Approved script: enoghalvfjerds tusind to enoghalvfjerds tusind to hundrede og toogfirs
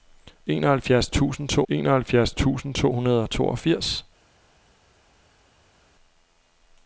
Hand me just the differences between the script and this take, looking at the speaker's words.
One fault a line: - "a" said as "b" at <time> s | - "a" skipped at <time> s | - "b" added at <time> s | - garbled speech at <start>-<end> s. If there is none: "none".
none